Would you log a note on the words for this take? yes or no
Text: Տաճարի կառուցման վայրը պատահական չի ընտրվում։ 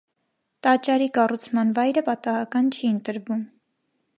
no